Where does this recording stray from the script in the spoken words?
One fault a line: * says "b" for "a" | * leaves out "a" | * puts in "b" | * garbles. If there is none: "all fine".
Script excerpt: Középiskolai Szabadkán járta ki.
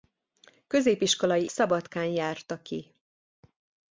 all fine